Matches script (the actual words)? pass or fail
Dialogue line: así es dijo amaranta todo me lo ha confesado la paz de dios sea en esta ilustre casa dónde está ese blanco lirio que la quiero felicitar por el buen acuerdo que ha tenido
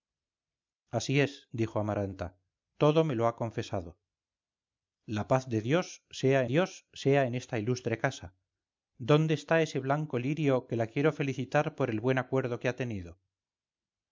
fail